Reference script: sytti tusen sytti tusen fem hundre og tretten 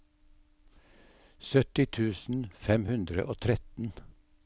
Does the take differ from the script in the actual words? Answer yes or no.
yes